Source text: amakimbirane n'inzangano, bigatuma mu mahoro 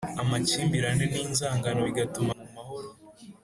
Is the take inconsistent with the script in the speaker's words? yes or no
no